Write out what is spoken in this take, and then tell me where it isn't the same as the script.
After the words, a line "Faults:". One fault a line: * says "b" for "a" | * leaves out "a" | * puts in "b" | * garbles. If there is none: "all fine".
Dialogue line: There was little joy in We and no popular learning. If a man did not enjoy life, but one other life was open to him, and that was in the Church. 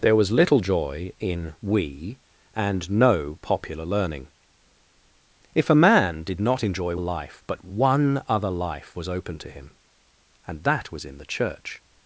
There was little joy in We and no popular learning. If a man did not enjoy life, but one other life was open to him, and that was in the Church.
Faults:
all fine